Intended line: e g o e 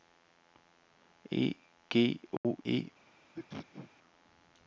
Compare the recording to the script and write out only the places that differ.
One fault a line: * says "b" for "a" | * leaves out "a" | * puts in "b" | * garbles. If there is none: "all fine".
all fine